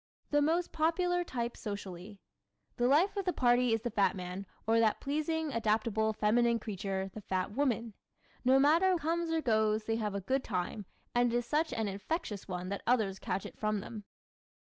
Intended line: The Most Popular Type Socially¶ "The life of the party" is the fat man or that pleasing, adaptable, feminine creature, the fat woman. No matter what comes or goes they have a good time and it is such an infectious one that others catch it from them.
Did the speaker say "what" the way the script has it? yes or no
no